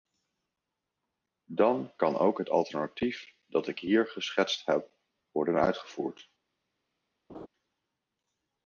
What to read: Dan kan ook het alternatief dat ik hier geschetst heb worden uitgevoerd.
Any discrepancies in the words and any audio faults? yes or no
yes